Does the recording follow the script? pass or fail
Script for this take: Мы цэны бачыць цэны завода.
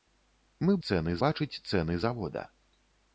pass